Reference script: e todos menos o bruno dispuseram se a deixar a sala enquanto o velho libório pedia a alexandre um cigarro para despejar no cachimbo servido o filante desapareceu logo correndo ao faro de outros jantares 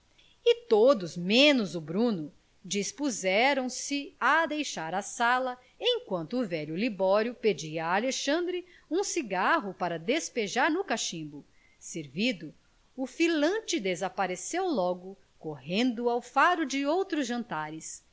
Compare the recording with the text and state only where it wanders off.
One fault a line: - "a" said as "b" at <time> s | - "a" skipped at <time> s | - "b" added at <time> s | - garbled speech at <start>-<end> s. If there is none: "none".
none